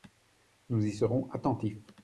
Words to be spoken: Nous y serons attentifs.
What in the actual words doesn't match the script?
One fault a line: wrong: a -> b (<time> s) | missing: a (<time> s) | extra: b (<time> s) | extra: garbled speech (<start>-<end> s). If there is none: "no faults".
no faults